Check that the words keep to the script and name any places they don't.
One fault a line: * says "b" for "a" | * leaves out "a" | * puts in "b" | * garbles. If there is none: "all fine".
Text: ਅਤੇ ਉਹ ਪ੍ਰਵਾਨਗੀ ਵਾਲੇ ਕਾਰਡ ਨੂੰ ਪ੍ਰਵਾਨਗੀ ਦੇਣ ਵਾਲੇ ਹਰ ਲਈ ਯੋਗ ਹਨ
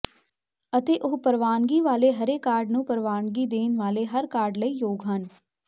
* puts in "ਹਰੇ"
* puts in "ਕਾਰਡ"